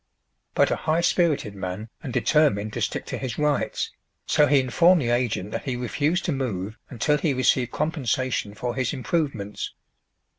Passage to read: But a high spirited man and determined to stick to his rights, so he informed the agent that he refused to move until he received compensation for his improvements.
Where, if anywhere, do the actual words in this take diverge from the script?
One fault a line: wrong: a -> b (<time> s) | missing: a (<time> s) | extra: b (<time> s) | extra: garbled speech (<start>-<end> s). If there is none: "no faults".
no faults